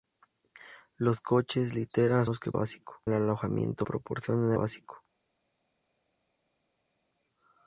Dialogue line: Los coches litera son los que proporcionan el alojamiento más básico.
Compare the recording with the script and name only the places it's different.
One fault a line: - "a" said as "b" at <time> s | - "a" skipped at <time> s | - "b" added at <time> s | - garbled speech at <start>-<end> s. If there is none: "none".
- "son" skipped at 2.2 s
- "proporcionan" said as "básico" at 2.5 s
- "más" said as "proporcionan" at 3.8 s